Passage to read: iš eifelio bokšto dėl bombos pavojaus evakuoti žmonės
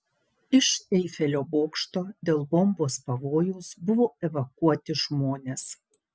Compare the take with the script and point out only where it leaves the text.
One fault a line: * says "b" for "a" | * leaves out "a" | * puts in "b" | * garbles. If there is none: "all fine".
* puts in "buvo"